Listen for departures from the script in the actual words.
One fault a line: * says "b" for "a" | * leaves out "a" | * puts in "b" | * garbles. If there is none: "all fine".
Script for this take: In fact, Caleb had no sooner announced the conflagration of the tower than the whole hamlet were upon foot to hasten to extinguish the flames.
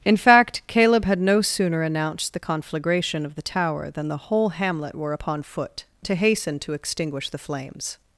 all fine